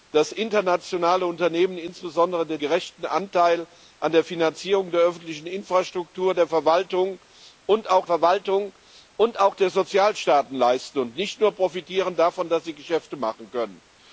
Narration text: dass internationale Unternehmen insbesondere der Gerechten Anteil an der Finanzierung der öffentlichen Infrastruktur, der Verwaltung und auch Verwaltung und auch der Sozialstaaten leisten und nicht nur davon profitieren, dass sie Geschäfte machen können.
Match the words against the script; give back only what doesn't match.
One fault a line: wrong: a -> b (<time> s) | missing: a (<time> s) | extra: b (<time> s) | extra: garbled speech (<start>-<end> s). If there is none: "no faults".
no faults